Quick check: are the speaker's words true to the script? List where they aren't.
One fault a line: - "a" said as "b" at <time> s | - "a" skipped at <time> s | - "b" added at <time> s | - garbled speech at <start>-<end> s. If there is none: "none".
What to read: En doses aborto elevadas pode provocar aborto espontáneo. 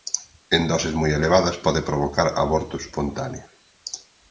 - "aborto" said as "moi" at 1.0 s